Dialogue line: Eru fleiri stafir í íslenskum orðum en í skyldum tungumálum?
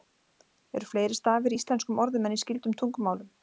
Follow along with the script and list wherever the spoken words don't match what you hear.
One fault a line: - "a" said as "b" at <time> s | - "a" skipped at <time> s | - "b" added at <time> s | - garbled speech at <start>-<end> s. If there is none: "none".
none